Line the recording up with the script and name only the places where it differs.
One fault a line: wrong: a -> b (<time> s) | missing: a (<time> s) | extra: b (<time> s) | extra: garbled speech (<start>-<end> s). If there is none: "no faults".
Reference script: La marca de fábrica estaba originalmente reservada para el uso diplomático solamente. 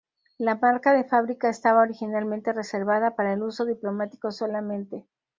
no faults